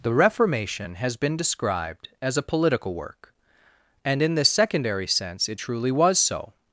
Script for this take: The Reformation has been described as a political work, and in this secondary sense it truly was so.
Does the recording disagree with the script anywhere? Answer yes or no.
no